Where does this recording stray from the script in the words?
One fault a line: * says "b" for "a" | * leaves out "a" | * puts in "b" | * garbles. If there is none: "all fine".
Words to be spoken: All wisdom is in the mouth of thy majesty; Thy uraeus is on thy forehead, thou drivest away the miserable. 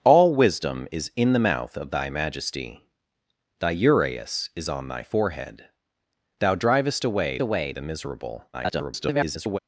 * puts in "away"
* garbles